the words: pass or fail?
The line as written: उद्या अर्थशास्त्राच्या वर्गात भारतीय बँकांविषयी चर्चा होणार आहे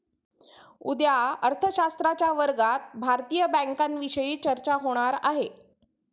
pass